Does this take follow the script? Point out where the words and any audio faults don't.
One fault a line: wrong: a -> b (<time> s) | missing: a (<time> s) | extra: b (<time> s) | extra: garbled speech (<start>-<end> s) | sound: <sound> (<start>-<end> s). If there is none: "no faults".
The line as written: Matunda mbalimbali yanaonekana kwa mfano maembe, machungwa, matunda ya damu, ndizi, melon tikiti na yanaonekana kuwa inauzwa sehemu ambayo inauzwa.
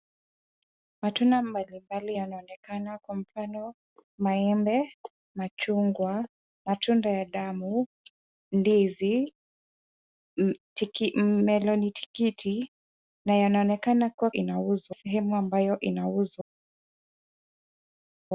no faults